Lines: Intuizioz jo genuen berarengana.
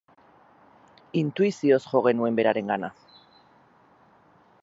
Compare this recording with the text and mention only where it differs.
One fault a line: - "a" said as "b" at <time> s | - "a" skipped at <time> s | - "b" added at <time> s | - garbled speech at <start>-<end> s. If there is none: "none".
none